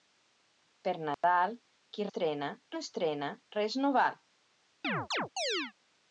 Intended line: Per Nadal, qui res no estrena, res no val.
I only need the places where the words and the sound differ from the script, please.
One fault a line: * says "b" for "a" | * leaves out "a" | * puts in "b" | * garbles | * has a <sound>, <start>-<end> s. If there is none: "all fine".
* has a dropout, 1.1-1.2 s
* says "estrena" for "res"
* has a chirp, 4.8-5.7 s